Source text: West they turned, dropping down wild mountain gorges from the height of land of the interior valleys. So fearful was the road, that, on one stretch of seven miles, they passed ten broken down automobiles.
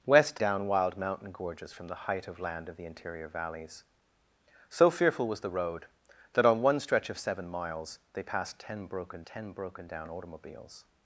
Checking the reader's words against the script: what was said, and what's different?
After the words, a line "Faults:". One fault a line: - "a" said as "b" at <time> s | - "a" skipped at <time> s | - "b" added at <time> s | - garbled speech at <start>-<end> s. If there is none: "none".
West down wild mountain gorges from the height of land of the interior valleys. So fearful was the road, that, on one stretch of seven miles, they passed ten broken ten broken down automobiles.
Faults:
- "they turned dropping" skipped at 0.4 s
- "ten broken" added at 9.2 s